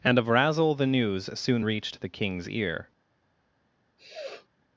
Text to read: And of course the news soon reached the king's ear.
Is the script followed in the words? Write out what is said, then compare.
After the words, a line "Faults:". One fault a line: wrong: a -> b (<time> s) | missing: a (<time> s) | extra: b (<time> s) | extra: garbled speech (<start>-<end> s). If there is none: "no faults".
And of razzle the news soon reached the king's ear.
Faults:
wrong: course -> razzle (0.3 s)